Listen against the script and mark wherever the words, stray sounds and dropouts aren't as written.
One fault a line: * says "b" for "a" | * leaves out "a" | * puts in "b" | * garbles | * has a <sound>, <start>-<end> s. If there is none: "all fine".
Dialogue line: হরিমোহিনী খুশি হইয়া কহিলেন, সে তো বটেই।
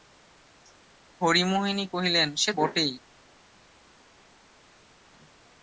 * leaves out "খুশি হইয়া"
* leaves out "তো"